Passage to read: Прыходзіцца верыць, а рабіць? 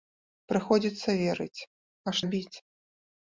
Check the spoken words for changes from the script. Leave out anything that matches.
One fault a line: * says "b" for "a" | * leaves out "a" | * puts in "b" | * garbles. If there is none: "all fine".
all fine